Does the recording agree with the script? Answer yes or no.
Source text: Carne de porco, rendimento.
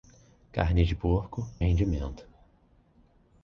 yes